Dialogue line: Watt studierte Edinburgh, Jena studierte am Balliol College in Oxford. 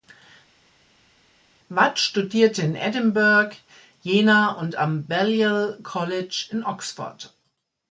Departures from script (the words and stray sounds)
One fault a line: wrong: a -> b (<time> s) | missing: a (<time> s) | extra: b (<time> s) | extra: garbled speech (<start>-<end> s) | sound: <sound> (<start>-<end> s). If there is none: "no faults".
extra: in (2.6 s)
wrong: studierte -> und (4.5 s)